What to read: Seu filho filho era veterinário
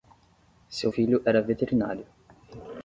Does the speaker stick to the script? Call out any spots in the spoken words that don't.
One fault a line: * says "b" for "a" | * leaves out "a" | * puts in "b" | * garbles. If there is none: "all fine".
* leaves out "filho"